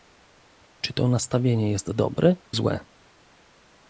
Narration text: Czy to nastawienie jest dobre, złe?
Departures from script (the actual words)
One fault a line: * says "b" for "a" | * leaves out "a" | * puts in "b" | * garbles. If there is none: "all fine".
all fine